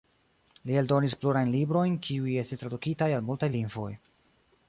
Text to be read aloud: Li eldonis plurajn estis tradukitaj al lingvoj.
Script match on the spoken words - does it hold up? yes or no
no